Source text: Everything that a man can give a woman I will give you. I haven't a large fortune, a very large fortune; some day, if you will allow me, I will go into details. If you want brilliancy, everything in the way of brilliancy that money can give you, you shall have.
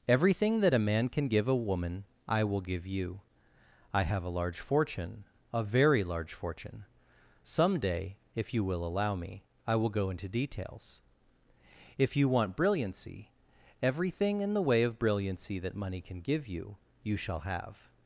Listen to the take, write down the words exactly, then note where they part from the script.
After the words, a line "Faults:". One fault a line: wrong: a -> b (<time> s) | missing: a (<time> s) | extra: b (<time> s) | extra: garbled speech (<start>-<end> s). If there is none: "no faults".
Everything that a man can give a woman I will give you. I have a large fortune, a very large fortune; some day, if you will allow me, I will go into details. If you want brilliancy, everything in the way of brilliancy that money can give you, you shall have.
Faults:
wrong: haven't -> have (4.0 s)